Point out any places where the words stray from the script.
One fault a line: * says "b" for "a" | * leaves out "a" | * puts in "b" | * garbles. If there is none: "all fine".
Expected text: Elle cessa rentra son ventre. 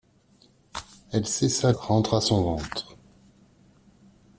all fine